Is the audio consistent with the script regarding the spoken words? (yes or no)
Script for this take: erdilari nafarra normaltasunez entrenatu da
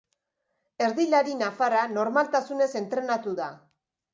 yes